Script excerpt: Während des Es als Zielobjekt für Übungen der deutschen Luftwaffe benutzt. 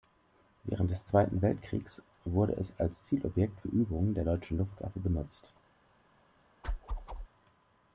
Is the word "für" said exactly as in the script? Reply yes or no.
yes